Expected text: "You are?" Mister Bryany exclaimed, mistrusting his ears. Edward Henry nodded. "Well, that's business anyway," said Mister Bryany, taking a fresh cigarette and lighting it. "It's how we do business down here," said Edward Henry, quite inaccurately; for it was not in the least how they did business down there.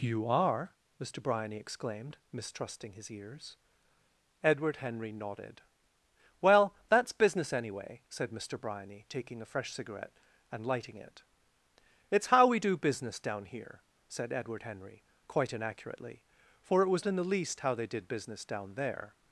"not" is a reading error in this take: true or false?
true